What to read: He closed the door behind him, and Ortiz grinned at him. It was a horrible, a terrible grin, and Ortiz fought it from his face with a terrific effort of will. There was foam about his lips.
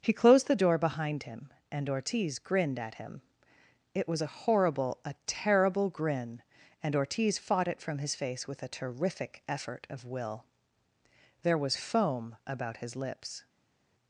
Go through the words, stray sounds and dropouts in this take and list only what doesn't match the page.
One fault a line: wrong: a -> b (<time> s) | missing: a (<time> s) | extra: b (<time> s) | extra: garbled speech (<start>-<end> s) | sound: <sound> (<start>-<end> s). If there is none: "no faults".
no faults